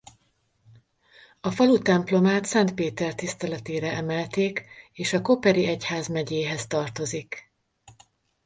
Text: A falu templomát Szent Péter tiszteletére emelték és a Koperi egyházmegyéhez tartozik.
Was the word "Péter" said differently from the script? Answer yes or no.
no